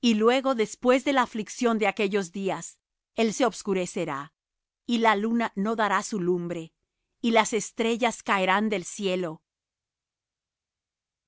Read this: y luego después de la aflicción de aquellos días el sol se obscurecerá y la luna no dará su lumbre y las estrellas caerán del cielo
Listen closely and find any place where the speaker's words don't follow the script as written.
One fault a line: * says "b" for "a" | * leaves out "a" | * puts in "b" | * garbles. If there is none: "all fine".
* leaves out "sol"